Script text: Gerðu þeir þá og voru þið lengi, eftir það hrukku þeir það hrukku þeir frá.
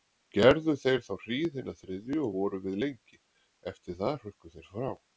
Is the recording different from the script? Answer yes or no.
yes